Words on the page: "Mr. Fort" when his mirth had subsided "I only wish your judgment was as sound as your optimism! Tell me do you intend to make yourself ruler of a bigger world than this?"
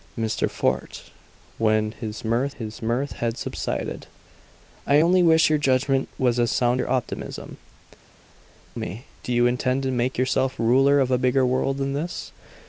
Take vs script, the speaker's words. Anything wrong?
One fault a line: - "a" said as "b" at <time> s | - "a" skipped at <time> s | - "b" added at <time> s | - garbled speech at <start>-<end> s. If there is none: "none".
- "his mirth" added at 2.5 s
- "as" skipped at 6.8 s
- "Tell" skipped at 7.6 s